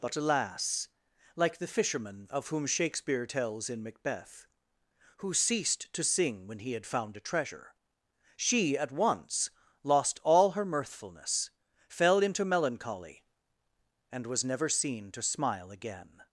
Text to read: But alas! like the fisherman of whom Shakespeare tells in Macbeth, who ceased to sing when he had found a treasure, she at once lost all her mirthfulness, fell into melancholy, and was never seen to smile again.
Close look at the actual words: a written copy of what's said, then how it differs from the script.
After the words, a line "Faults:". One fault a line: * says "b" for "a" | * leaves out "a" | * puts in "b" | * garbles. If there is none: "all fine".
But alas! like the fisherman of whom Shakespeare tells in Macbeth, who ceased to sing when he had found a treasure, she at once lost all her mirthfulness, fell into melancholy, and was never seen to smile again.
Faults:
all fine